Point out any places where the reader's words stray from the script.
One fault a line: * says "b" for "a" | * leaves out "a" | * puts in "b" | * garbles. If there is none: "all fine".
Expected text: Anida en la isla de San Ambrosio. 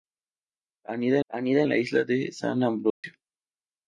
* puts in "anida"